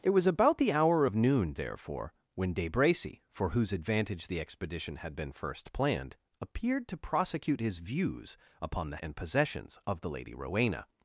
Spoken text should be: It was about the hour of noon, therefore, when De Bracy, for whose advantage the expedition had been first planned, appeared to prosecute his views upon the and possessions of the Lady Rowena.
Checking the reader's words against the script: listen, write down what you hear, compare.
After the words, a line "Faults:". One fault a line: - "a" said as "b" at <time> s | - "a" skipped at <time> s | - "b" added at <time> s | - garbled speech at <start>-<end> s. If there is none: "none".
It was about the hour of noon, therefore, when De Bracy, for whose advantage the expedition had been first planned, appeared to prosecute his views upon the and possessions of the Lady Rowena.
Faults:
none